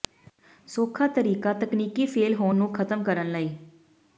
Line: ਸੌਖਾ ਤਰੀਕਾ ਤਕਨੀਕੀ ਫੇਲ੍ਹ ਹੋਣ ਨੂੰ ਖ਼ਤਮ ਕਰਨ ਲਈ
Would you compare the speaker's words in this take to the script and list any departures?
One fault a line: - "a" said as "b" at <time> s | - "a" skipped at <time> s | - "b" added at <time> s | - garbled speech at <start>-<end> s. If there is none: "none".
none